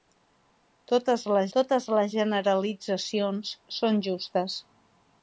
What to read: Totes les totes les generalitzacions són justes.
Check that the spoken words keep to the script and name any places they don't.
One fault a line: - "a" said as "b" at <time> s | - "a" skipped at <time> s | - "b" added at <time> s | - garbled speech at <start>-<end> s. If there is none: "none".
none